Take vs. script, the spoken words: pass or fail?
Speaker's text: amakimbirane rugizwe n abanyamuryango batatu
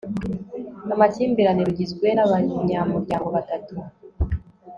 pass